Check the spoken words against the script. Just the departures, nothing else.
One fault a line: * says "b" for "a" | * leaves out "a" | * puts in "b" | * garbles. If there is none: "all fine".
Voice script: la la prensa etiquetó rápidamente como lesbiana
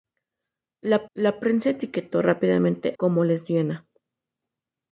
all fine